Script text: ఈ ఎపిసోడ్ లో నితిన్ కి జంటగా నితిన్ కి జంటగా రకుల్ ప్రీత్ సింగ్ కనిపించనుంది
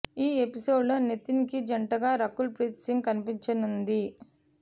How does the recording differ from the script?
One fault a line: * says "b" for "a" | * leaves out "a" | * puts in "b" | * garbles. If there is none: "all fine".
* leaves out "నితిన్ కి జంటగా"